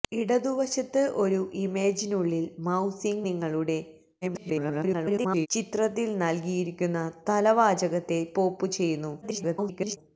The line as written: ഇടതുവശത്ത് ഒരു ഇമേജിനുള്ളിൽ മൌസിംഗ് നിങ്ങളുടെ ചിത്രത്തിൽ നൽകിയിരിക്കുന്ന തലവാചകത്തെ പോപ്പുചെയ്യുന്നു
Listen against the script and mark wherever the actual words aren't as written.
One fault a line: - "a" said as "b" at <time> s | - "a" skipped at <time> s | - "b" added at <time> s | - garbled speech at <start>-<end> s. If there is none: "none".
- garbled speech at 4.2-5.5 s
- garbled speech at 9.2-10.0 s